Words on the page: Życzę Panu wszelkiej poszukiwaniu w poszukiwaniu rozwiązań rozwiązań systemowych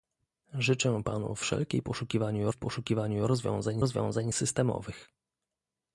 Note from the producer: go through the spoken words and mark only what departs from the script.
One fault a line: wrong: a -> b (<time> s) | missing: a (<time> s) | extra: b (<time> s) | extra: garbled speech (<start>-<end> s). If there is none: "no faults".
no faults